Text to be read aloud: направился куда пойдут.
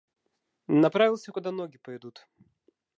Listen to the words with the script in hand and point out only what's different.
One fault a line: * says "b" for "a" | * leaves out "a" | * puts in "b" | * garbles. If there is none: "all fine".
* puts in "ноги"